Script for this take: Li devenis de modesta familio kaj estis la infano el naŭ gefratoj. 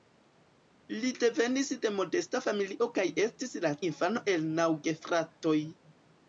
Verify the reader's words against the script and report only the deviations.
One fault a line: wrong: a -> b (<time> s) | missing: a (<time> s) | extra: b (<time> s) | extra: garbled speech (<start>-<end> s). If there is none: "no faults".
no faults